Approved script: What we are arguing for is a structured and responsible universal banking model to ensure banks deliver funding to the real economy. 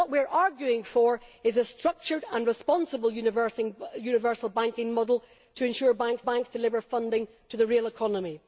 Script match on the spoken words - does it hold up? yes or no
no